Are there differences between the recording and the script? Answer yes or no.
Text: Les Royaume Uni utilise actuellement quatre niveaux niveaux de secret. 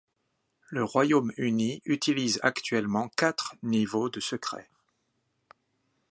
yes